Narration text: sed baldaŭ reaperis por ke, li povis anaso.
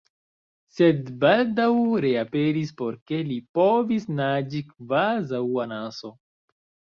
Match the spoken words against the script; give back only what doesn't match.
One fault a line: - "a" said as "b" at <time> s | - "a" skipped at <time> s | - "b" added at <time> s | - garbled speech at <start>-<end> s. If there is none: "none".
- "naĝi kvazaŭ" added at 4.2 s